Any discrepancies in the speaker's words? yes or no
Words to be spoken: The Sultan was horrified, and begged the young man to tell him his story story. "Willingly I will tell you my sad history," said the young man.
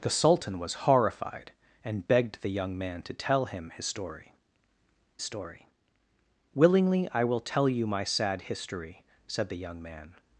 no